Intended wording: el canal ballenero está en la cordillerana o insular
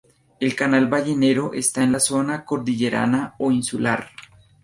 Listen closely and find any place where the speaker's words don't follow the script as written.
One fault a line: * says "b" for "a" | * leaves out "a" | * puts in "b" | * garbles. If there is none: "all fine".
* puts in "zona"